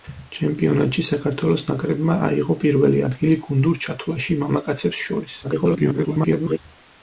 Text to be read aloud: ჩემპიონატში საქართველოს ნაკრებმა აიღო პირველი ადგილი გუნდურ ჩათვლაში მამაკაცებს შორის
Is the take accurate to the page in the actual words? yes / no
no